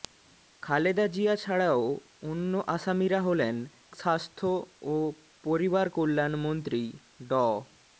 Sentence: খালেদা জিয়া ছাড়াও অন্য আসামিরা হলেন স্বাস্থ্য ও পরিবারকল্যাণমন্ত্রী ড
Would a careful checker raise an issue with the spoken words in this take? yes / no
no